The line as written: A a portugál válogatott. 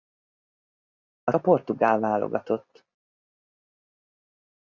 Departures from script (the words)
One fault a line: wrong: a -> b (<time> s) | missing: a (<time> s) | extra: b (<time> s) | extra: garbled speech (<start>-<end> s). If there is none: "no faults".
no faults